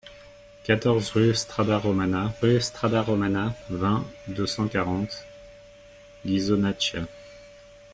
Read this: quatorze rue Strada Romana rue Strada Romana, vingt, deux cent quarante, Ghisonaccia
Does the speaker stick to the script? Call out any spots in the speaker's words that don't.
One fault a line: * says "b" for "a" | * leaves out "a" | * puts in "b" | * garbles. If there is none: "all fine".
all fine